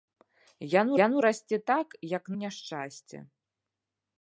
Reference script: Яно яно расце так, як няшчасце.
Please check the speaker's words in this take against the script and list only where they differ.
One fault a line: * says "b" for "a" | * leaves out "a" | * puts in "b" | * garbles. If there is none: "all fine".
all fine